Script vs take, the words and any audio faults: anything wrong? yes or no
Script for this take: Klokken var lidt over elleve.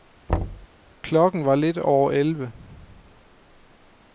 yes